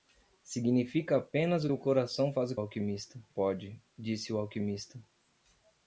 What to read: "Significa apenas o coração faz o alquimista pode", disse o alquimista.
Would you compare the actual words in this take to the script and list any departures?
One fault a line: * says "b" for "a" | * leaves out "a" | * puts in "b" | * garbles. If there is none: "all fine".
all fine